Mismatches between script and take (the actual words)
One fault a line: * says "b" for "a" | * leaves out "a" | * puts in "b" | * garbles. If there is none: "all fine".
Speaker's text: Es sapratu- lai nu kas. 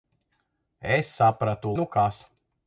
* leaves out "lai"